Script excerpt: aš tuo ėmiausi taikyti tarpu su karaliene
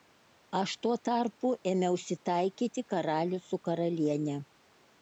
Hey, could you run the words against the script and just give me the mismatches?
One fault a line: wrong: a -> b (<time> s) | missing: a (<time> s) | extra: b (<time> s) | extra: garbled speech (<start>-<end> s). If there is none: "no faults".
extra: tarpu (1.1 s)
wrong: tarpu -> karalių (3.0 s)